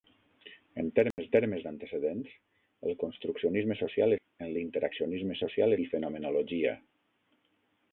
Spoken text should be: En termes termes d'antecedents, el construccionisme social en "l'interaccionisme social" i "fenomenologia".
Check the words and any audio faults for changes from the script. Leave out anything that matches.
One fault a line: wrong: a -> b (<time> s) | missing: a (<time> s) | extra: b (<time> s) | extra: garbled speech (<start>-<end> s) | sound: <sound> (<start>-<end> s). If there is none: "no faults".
sound: dropout (1.1-1.2 s)